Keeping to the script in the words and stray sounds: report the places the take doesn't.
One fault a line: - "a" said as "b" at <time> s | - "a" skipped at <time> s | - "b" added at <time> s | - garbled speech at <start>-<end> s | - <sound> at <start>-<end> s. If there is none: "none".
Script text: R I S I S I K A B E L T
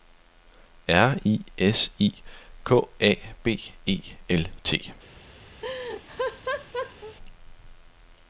- "S I" skipped at 2.1 s
- laugh at 5.6-7.2 s